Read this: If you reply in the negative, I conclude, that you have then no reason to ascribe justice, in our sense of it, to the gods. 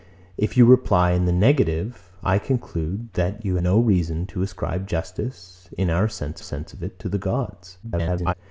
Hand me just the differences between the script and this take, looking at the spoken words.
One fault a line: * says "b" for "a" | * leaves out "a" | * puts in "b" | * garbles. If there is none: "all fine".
* leaves out "have then"
* puts in "sense"
* garbles